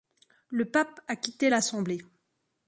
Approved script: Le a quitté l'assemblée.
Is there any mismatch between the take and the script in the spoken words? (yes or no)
yes